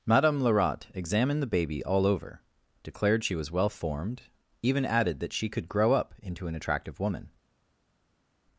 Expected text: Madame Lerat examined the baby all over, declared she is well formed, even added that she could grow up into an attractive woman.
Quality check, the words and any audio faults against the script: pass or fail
fail